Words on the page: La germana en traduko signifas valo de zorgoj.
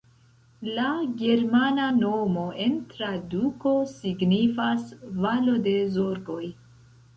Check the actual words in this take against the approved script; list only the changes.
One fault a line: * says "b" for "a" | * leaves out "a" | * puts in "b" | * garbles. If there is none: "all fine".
* puts in "nomo"